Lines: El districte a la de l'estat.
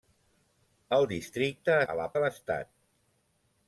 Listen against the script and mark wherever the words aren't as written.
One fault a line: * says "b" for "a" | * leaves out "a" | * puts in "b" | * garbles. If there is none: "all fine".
all fine